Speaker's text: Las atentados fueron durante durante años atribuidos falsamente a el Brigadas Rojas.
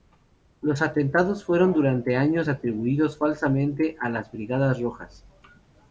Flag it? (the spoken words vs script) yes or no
yes